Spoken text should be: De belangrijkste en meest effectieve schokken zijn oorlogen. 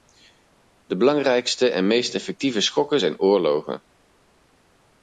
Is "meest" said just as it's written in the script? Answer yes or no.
yes